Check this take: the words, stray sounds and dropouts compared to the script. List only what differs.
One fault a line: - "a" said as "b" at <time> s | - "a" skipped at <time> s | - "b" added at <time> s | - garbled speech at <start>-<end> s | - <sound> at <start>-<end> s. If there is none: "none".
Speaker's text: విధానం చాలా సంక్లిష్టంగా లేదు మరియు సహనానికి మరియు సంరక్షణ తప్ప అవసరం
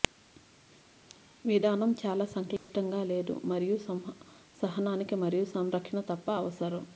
- dropout at 2.6-2.7 s